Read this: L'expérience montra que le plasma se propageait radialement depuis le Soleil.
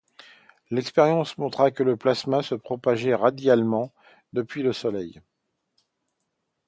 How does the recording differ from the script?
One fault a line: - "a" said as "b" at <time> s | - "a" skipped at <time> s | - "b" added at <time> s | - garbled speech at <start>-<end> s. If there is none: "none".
none